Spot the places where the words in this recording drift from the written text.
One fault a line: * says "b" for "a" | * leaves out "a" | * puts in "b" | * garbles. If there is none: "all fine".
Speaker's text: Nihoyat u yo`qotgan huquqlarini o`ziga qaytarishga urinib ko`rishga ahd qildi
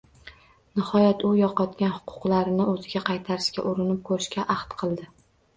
all fine